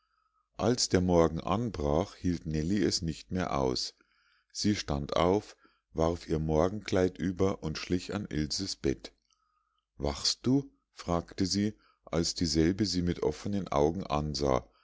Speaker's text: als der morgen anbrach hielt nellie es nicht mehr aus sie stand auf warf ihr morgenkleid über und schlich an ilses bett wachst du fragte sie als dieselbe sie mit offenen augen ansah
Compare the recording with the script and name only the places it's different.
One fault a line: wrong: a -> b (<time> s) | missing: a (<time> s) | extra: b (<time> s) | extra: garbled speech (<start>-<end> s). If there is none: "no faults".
no faults